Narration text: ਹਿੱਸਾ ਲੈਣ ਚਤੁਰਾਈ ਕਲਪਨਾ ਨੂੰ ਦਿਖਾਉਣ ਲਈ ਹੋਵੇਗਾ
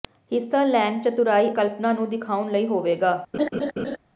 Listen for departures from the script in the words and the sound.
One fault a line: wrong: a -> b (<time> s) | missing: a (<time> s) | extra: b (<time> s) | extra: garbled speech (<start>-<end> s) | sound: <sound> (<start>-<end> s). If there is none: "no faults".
sound: laugh (3.3-4.0 s)